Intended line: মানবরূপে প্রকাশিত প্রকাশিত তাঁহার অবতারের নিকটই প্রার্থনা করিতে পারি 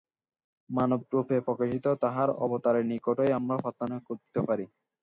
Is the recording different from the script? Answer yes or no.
yes